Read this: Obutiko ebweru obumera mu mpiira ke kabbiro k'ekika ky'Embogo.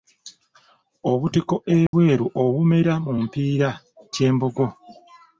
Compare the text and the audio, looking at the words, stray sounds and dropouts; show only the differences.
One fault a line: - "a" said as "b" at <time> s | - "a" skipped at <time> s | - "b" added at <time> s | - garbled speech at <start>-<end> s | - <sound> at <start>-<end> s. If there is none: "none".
- dropout at 1.9-1.9 s
- "ke kabbiro k'ekika" skipped at 3.7 s